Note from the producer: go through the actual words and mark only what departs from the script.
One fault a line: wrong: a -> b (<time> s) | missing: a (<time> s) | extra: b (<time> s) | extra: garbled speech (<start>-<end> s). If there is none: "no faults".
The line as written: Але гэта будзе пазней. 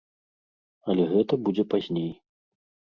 no faults